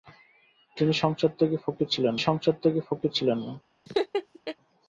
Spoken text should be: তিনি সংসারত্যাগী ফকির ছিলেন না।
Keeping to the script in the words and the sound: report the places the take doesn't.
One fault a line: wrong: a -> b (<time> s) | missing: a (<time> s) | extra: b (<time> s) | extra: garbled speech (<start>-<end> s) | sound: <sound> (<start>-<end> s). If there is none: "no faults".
extra: সংসারত্যাগী ফকির ছিলেন (2.2 s)
sound: laugh (3.9-4.6 s)